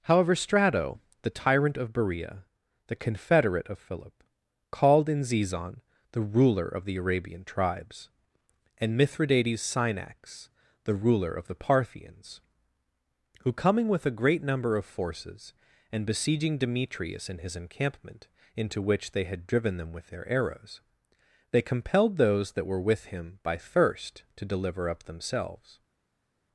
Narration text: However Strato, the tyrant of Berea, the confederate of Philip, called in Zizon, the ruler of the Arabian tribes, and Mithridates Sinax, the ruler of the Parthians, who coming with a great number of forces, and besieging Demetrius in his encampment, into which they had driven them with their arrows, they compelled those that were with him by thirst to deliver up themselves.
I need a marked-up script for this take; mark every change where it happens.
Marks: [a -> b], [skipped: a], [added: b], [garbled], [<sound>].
However Strato, the tyrant of Berea, the confederate of Philip, called in Zizon, the ruler of the Arabian tribes, and Mithridates Sinax, the ruler of the Parthians, who coming with a great number of forces, and besieging Demetrius in his encampment, into which they had driven them with their arrows, they compelled those that were with him by thirst to deliver up themselves.